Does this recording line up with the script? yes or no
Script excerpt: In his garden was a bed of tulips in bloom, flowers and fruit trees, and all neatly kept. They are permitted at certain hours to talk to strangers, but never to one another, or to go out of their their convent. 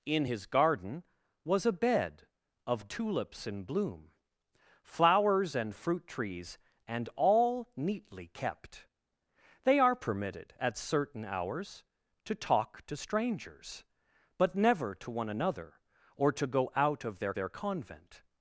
yes